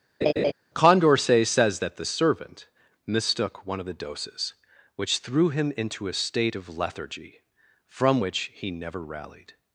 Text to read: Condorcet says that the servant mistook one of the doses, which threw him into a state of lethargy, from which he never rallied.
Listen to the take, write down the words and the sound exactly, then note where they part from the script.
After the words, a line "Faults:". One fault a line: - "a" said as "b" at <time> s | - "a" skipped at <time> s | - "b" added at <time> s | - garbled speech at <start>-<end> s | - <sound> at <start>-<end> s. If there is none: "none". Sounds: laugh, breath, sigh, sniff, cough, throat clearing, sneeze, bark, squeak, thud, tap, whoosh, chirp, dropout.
Condorcet says that the servant mistook one of the doses, which threw him into a state of lethargy, from which he never rallied.
Faults:
- laugh at 0.2-0.5 s